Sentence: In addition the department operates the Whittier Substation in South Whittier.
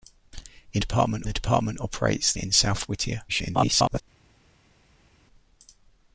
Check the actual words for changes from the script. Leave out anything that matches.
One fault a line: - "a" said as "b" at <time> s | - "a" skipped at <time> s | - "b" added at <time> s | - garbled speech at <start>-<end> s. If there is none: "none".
- "addition" said as "department" at 0.8 s
- "the Whittier Substation" skipped at 2.3 s
- garbled speech at 3.3-4.0 s